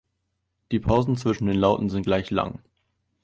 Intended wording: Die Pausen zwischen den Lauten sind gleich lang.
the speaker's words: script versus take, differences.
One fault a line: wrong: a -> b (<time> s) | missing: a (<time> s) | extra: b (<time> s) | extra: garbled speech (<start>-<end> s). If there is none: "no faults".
no faults